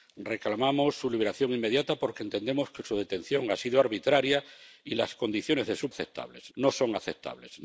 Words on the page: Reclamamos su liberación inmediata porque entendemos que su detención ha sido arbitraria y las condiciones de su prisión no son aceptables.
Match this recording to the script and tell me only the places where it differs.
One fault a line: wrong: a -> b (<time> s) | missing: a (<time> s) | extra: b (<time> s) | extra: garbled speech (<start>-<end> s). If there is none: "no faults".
wrong: prisión -> aceptables (5.9 s)